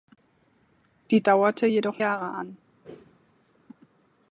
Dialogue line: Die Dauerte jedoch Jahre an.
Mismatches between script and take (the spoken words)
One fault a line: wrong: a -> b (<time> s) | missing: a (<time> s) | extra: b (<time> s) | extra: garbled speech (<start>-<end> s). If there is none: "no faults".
no faults